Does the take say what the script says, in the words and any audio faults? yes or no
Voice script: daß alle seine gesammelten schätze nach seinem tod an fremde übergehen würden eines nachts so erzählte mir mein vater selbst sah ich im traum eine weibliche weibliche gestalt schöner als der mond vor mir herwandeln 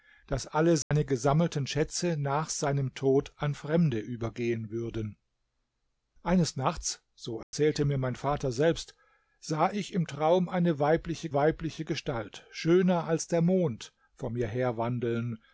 no